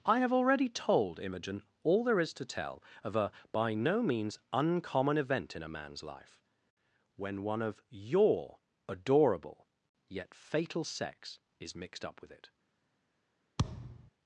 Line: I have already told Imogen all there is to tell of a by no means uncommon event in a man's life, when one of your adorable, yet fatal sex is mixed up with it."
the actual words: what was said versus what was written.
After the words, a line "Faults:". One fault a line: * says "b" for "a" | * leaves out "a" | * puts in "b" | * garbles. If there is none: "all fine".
I have already told Imogen all there is to tell of a by no means uncommon event in a man's life, when one of your adorable, yet fatal sex is mixed up with it."
Faults:
all fine